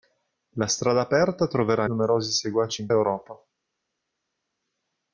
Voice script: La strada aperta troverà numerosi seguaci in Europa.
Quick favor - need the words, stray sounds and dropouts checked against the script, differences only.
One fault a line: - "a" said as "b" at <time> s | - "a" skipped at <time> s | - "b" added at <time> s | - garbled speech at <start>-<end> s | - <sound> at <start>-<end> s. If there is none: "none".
none